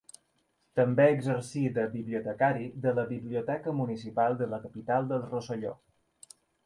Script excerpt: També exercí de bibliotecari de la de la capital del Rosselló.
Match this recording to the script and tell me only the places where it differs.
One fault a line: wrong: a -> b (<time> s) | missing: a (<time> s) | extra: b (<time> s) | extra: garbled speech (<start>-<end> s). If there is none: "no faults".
extra: biblioteca municipal (3.1 s)